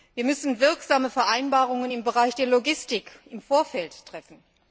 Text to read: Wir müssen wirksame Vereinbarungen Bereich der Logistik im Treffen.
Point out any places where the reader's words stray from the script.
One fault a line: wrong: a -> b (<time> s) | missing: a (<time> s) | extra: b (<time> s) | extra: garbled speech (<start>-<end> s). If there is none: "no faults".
extra: im (1.9 s)
extra: Vorfeld (3.4 s)